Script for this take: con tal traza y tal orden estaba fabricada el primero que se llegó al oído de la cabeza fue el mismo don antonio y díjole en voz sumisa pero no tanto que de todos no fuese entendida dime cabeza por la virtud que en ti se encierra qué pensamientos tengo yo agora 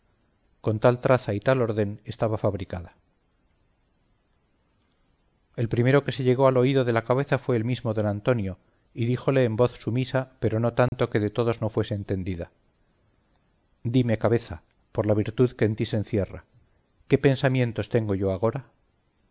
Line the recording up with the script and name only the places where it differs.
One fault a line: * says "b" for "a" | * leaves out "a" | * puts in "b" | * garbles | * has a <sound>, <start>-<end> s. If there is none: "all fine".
* has a dropout, 10.9-10.9 s